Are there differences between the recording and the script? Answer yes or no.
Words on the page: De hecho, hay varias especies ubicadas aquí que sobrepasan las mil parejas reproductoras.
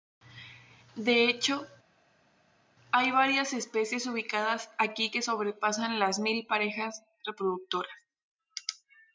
no